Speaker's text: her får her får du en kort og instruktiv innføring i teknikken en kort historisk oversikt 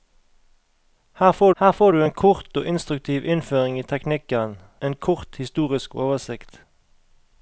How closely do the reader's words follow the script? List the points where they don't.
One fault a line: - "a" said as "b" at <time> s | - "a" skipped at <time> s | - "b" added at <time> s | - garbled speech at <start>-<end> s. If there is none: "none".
none